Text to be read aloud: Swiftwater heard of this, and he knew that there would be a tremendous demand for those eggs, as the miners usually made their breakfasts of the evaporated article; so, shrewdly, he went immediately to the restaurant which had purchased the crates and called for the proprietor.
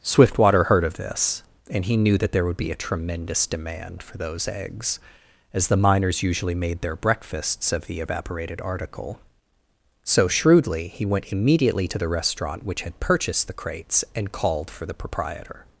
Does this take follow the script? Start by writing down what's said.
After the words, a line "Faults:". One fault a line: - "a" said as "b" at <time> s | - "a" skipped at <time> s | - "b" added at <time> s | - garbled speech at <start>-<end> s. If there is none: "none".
Swiftwater heard of this, and he knew that there would be a tremendous demand for those eggs, as the miners usually made their breakfasts of the evaporated article; so, shrewdly, he went immediately to the restaurant which had purchased the crates and called for the proprietor.
Faults:
none